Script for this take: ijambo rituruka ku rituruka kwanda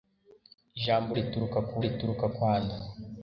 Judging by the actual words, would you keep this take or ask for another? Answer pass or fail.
pass